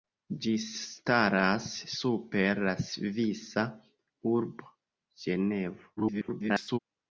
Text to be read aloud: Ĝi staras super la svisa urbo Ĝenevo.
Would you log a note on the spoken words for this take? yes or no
yes